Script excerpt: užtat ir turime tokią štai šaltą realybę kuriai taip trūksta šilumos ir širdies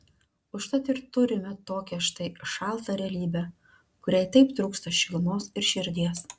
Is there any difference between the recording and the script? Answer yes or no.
no